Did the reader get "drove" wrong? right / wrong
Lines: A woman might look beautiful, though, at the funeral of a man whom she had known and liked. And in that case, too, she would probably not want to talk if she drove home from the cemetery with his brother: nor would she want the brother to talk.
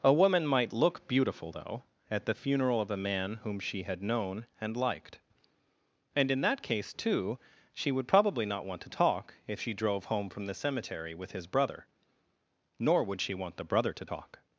right